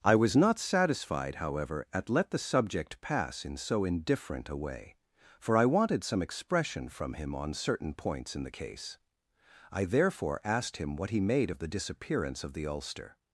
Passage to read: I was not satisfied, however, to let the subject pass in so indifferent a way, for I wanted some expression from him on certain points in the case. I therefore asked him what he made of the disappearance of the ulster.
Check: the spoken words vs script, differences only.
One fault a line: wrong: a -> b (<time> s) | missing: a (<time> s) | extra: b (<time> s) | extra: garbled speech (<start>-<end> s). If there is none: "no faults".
wrong: to -> at (1.9 s)